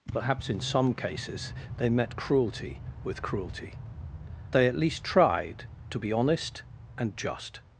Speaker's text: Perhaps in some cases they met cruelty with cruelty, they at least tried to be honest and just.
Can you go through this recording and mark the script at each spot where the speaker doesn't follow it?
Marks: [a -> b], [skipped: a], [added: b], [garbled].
Perhaps in some cases they met cruelty with cruelty, they at least tried to be honest and just.